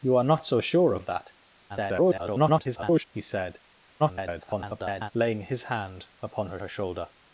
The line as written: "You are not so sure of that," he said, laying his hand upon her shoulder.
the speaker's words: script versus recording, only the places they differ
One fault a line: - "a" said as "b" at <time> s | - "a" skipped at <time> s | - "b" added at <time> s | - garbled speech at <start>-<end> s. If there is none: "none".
- garbled speech at 1.7-3.0 s
- garbled speech at 4.0-5.1 s
- "her" added at 6.6 s